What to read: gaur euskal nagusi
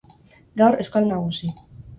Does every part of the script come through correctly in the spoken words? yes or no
yes